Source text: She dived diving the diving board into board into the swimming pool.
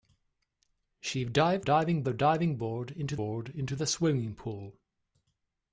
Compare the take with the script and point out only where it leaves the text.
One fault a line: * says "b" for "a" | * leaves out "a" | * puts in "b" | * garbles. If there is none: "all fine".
all fine